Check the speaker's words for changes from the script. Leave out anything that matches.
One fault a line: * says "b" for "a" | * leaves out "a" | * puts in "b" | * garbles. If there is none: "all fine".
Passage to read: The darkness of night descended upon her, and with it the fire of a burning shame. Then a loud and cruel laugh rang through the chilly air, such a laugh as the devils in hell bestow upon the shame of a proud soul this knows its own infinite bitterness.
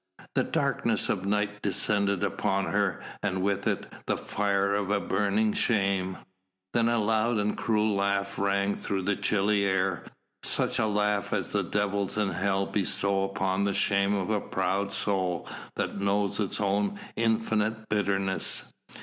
* says "that" for "this"